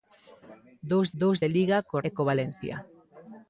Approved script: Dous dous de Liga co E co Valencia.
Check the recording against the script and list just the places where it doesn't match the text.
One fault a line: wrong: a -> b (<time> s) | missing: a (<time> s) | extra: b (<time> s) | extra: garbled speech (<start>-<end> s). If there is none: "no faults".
no faults